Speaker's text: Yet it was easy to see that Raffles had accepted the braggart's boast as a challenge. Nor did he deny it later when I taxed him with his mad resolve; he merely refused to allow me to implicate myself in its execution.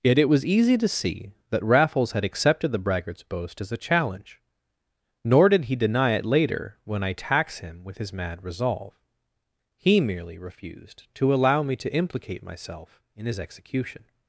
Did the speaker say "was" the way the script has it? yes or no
yes